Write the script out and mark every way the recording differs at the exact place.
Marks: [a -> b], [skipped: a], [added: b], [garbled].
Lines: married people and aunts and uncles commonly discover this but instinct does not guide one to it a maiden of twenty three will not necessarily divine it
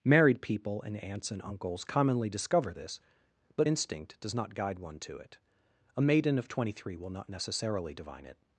married people and aunts and uncles commonly discover this but instinct does not guide one to it a maiden of twenty three will not necessarily divine it